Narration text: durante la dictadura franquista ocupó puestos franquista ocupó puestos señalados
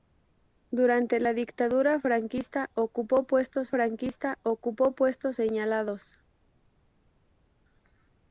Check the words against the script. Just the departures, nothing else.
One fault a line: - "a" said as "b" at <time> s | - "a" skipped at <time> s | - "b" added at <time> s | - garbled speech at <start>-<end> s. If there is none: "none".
none